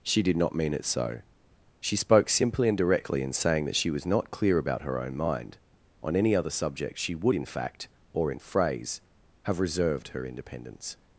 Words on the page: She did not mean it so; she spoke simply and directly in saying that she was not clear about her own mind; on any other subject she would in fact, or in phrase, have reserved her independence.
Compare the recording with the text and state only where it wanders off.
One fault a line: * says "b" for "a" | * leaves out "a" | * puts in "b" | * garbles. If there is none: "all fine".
all fine